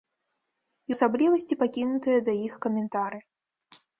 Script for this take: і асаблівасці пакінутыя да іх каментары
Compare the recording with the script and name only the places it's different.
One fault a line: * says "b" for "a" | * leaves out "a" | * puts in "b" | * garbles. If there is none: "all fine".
all fine